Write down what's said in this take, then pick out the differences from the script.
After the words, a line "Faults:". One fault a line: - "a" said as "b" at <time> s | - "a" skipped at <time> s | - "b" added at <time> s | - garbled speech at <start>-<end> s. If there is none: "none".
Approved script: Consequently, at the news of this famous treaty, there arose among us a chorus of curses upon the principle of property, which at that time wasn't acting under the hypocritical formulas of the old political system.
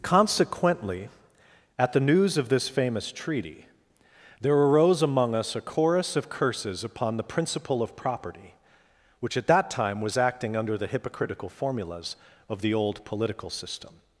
Consequently, at the news of this famous treaty, there arose among us a chorus of curses upon the principle of property, which at that time was acting under the hypocritical formulas of the old political system.
Faults:
- "wasn't" said as "was" at 10.0 s